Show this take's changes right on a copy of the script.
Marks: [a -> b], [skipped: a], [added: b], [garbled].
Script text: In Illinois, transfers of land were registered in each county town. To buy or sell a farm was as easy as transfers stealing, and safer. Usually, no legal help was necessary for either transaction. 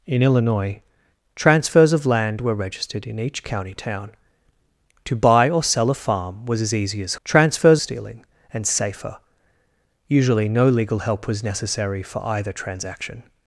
In Illinois, transfers of land were registered in each county town. To buy or sell a farm was as easy as transfers stealing, and safer. Usually, no legal help was necessary for either transaction.